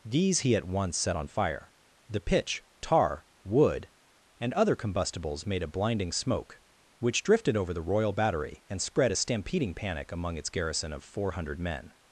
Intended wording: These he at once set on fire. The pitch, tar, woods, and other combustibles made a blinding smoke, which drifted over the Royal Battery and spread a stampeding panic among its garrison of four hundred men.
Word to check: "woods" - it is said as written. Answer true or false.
false